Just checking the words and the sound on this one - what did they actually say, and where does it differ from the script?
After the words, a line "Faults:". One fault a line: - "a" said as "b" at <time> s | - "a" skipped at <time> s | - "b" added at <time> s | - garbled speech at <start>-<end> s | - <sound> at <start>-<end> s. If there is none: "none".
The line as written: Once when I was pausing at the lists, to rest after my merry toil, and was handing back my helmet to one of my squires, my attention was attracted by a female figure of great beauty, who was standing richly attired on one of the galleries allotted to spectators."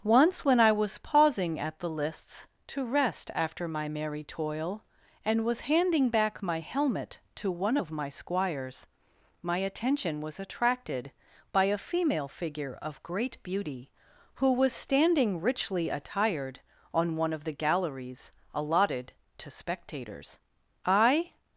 Once when I was pausing at the lists, to rest after my merry toil, and was handing back my helmet to one of my squires, my attention was attracted by a female figure of great beauty, who was standing richly attired on one of the galleries allotted to spectators." "I
Faults:
- "I" added at 20.9 s